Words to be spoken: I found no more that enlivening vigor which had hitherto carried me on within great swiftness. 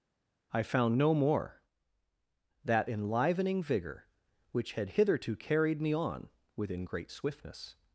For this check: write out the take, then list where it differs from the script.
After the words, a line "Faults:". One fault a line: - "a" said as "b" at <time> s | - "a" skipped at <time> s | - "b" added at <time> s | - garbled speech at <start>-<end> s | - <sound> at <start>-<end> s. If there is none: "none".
I found no more that enlivening vigor which had hitherto carried me on within great swiftness.
Faults:
none